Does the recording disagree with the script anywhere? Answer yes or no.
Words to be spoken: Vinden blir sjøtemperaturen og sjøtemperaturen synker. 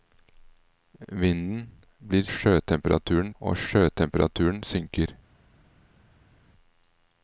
no